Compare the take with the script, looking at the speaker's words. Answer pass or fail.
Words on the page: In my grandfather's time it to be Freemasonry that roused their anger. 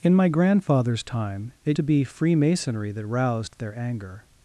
pass